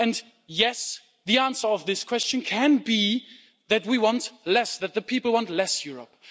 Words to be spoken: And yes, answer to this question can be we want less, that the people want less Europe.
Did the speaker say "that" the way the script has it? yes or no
yes